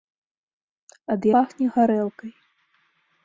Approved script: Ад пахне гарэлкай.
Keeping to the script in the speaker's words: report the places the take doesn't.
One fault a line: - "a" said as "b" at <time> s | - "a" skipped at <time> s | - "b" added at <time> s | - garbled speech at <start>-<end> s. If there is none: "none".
none